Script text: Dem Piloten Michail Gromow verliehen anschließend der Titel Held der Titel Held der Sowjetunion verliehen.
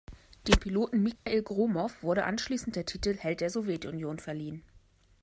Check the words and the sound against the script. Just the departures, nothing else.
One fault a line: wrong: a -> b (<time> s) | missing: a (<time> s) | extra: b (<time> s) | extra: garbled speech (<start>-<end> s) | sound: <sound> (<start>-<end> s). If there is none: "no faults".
sound: dropout (1.2-1.3 s)
wrong: verliehen -> wurde (2.0 s)
missing: Titel Held der (3.5 s)